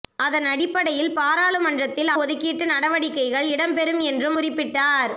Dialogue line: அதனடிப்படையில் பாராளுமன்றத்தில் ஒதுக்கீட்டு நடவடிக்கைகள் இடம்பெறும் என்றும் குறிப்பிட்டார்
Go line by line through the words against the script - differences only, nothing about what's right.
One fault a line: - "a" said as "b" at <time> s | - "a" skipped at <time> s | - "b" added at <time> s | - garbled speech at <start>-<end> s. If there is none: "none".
none